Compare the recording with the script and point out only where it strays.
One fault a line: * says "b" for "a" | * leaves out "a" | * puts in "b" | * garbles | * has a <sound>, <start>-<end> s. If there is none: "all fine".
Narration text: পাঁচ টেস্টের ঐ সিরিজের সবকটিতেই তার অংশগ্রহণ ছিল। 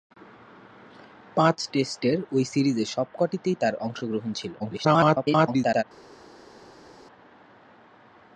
* garbles